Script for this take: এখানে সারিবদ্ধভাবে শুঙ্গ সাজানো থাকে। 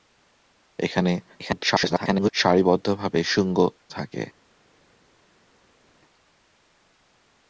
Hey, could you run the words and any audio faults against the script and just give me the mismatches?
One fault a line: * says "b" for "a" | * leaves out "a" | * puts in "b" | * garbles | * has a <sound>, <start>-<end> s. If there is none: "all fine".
* garbles
* leaves out "সাজানো"